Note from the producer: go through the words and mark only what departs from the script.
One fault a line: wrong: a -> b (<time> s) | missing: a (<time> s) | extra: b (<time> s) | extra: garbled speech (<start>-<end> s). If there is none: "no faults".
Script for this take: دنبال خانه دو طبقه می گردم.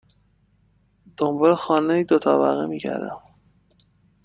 no faults